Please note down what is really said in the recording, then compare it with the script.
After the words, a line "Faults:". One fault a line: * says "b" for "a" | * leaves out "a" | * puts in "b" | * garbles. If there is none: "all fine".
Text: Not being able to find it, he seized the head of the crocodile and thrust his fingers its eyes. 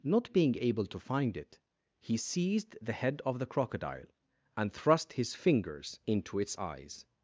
Not being able to find it, he seized the head of the crocodile and thrust his fingers into its eyes.
Faults:
* puts in "into"